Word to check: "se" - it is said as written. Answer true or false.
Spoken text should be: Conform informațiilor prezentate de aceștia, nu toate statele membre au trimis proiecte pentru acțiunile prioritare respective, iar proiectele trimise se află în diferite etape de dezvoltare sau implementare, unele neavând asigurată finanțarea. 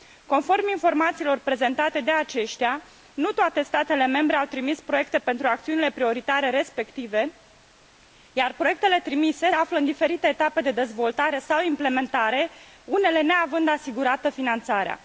false